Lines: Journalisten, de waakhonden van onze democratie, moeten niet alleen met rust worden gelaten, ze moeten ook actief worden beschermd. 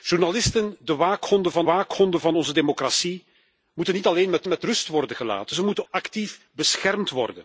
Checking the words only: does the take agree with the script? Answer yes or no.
no